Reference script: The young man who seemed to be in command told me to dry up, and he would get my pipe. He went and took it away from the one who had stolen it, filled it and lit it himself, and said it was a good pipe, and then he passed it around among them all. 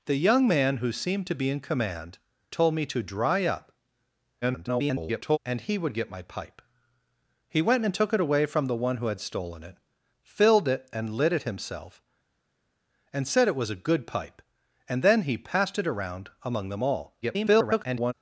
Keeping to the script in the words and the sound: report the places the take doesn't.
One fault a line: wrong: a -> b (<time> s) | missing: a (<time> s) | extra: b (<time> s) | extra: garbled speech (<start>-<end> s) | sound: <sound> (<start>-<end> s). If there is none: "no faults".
extra: garbled speech (4.4-5.4 s)
extra: garbled speech (17.2-18.1 s)